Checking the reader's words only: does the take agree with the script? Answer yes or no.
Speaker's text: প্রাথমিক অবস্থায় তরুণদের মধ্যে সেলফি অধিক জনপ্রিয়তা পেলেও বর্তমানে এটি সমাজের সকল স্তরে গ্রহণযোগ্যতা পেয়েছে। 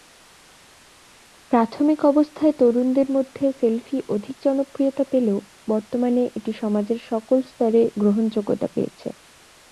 yes